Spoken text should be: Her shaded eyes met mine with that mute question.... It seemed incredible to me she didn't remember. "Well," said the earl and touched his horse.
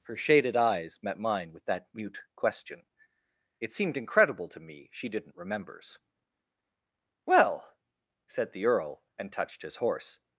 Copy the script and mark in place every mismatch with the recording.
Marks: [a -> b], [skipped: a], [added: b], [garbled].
Her shaded eyes met mine with that mute question.... It seemed incredible to me she didn't [remember. -> remembers] "Well," said the earl and touched his horse.